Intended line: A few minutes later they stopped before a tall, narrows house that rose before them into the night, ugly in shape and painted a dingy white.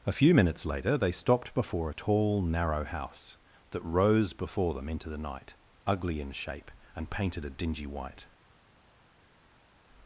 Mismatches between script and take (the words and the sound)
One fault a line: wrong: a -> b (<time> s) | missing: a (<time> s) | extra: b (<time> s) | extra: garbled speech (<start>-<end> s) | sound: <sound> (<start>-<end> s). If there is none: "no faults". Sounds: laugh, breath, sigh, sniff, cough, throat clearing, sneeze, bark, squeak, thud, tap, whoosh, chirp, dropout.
wrong: narrows -> narrow (2.4 s)